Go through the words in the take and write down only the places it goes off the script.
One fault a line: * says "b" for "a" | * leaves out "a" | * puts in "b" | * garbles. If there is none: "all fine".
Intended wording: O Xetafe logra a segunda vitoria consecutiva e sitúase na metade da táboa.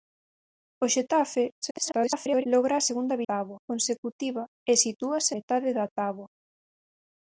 * garbles
* says "táboa" for "vitoria"
* leaves out "na"